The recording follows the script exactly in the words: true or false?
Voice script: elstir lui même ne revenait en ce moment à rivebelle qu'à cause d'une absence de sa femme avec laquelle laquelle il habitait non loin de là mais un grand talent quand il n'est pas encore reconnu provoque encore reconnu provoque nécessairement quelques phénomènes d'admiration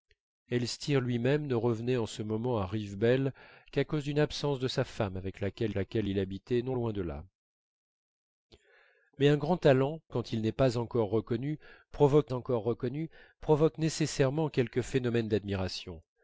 true